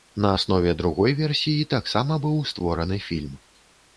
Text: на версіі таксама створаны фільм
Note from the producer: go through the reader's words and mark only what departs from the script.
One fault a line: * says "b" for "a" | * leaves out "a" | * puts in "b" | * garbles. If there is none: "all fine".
* puts in "аснове другой"
* puts in "быў"